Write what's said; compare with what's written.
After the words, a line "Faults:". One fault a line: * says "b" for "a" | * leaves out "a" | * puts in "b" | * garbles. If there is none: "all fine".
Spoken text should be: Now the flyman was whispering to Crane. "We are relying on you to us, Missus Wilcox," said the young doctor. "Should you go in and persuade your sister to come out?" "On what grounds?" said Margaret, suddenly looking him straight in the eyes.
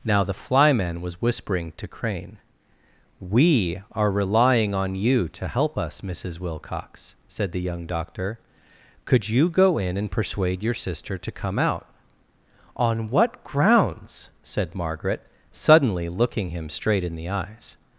Now the flyman was whispering to Crane. "We are relying on you to help us, Missus Wilcox," said the young doctor. "Could you go in and persuade your sister to come out?" "On what grounds?" said Margaret, suddenly looking him straight in the eyes.
Faults:
* puts in "help"
* says "Could" for "Should"